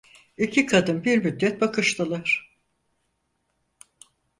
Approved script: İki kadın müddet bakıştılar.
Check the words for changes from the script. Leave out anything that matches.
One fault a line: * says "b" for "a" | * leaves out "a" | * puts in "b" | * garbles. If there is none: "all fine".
* puts in "bir"